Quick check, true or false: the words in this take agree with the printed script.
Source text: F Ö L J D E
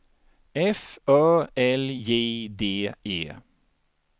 true